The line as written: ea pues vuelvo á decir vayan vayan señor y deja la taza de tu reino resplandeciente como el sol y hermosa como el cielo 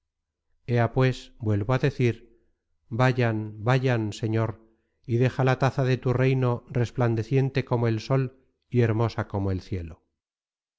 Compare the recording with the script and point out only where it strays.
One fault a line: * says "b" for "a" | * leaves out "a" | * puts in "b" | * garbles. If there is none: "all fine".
all fine